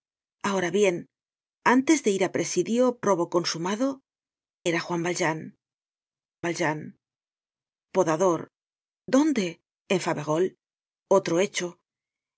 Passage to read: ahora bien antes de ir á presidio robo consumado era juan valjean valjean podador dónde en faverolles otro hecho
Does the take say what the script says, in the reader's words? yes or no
yes